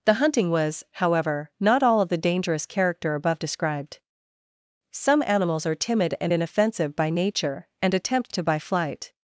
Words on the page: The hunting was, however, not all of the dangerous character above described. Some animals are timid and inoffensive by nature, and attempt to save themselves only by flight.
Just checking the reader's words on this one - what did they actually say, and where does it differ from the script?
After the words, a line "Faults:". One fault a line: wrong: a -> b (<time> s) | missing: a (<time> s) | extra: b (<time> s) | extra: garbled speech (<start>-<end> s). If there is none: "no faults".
The hunting was, however, not all of the dangerous character above described. Some animals are timid and inoffensive by nature, and attempt to by flight.
Faults:
missing: save themselves only (8.4 s)